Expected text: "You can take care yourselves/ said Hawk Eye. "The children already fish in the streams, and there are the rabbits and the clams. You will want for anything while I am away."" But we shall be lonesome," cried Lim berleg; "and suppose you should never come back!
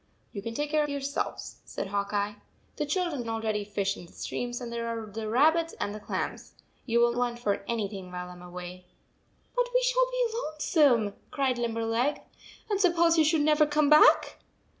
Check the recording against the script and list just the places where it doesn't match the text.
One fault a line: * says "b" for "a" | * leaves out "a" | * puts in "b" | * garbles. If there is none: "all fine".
all fine